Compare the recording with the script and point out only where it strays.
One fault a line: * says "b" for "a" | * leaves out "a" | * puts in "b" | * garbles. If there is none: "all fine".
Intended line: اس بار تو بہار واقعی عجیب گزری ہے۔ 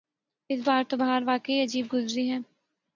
all fine